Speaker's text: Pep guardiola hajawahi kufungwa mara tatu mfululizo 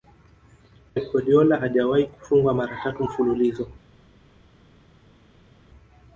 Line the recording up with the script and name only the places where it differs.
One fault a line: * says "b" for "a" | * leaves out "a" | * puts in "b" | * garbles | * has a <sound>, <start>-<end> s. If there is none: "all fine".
all fine